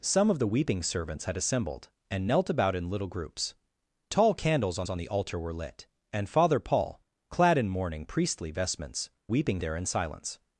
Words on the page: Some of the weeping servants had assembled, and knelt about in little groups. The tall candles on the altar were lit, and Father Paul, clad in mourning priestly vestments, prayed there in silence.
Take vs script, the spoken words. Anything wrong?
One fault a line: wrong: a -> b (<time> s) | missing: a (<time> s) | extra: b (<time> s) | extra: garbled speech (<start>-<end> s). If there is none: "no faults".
missing: The (3.5 s)
extra: on (4.9 s)
wrong: prayed -> weeping (9.3 s)